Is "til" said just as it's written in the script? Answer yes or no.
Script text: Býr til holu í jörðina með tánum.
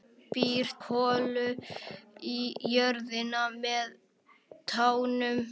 no